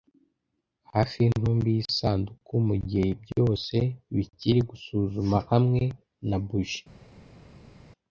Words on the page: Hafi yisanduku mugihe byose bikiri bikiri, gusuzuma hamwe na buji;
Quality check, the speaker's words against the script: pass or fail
fail